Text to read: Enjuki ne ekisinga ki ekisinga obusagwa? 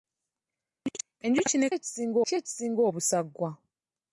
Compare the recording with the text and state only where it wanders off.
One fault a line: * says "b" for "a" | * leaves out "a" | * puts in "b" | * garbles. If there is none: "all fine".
all fine